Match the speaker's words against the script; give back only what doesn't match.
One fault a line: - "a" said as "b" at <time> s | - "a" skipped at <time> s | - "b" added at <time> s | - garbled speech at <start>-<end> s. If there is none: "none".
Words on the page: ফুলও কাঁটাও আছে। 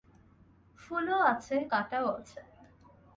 - "আছে" added at 1.3 s